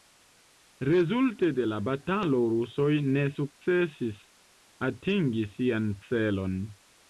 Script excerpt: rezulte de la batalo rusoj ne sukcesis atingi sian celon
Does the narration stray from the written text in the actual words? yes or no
no